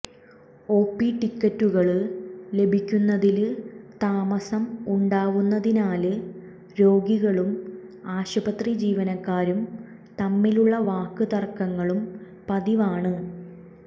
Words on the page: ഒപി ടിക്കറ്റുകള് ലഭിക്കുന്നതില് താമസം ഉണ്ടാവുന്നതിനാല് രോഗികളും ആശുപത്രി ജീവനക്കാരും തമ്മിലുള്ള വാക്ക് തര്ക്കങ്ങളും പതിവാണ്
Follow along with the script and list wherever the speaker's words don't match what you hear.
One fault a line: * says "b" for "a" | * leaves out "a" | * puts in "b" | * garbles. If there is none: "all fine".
all fine